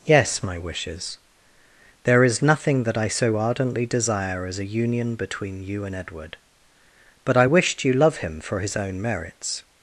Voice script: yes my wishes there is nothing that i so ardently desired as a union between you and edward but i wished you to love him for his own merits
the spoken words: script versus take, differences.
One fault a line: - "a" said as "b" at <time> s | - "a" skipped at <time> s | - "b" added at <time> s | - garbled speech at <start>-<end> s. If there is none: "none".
- "desired" said as "desire" at 3.9 s
- "to" skipped at 7.9 s